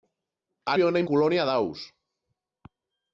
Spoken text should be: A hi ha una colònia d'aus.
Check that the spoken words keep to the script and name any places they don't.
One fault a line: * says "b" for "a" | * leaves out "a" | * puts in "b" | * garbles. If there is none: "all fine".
all fine